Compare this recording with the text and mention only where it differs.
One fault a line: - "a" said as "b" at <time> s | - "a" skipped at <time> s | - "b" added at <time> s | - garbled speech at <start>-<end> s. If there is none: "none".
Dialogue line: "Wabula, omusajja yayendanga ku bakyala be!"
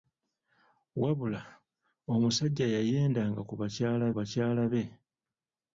- "bakyala" added at 4.2 s